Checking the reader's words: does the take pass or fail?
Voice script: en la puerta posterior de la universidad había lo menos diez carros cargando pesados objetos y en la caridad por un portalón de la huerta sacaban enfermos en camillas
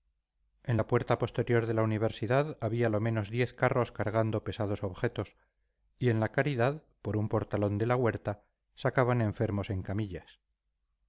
pass